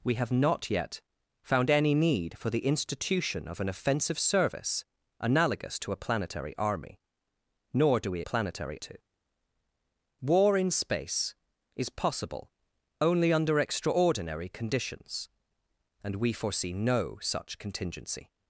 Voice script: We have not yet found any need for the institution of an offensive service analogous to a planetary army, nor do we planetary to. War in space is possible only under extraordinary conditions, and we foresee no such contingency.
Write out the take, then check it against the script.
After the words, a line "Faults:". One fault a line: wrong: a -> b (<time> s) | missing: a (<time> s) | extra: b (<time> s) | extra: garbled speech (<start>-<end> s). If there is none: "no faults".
We have not yet found any need for the institution of an offensive service analogous to a planetary army, nor do we planetary to. War in space is possible only under extraordinary conditions, and we foresee no such contingency.
Faults:
no faults